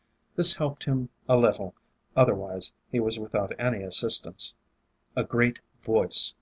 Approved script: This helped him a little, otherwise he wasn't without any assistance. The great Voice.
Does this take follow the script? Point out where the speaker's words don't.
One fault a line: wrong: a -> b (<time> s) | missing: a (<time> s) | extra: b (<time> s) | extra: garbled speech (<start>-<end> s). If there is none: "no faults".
wrong: wasn't -> was (3.0 s)
wrong: The -> A (5.1 s)